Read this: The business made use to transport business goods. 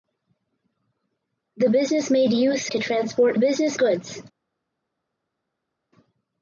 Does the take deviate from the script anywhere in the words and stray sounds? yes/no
no